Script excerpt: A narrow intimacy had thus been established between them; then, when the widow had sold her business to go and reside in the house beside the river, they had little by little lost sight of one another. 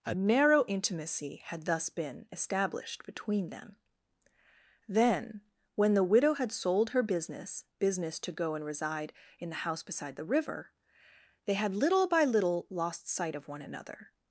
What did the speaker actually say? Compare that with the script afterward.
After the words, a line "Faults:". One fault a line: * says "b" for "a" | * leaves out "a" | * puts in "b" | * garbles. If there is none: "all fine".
A narrow intimacy had thus been established between them; then, when the widow had sold her business business to go and reside in the house beside the river, they had little by little lost sight of one another.
Faults:
* puts in "business"